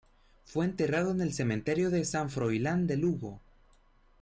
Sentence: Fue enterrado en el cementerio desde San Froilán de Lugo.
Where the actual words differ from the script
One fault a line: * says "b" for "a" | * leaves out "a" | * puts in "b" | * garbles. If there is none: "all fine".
* says "de" for "desde"